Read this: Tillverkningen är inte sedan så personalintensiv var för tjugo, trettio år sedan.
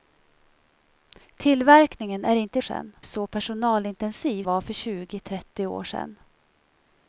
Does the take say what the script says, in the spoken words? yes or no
yes